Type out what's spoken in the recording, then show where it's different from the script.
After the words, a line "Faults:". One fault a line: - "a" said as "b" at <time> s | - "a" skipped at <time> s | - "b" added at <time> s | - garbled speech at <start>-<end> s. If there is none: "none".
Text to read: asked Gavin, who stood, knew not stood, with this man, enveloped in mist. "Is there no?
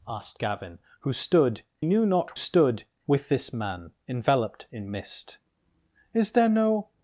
asked Gavin, who stood, knew not stood, with this man, enveloped in mist. "Is there no?
Faults:
none